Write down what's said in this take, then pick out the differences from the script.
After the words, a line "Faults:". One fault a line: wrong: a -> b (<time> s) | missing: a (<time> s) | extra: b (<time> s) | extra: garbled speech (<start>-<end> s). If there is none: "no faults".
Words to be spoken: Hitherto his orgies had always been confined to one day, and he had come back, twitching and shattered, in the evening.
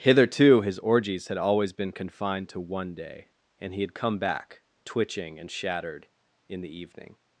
Hitherto his orgies had always been confined to one day, and he had come back, twitching and shattered, in the evening.
Faults:
no faults